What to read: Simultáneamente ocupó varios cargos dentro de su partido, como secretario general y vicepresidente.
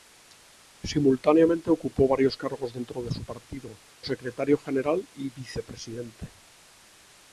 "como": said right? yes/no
no